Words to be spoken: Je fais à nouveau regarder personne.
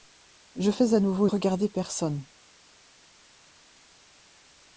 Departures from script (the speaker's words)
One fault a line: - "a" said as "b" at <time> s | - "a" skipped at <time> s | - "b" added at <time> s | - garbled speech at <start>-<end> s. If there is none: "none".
none